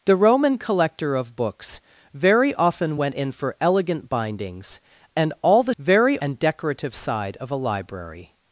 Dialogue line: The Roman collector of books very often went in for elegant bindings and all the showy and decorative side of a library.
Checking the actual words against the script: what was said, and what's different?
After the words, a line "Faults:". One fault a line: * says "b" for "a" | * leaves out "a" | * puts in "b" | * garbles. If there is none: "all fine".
The Roman collector of books very often went in for elegant bindings and all the very and decorative side of a library.
Faults:
* says "very" for "showy"